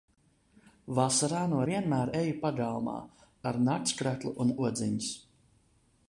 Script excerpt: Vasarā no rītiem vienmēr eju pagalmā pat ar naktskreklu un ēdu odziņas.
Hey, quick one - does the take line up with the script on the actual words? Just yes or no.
no